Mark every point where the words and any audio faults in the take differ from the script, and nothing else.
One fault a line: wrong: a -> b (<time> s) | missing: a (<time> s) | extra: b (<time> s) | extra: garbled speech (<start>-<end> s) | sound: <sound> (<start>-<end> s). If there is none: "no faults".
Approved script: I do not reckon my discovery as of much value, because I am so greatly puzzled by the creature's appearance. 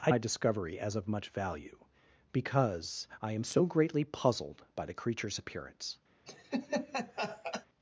missing: do not reckon (0.1 s)
sound: laugh (6.3-7.7 s)